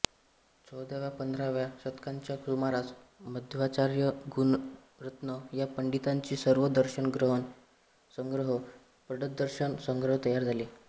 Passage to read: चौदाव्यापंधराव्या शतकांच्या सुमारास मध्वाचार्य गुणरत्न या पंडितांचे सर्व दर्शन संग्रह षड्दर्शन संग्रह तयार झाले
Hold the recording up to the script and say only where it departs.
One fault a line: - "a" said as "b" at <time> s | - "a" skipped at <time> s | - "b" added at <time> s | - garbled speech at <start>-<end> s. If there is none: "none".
none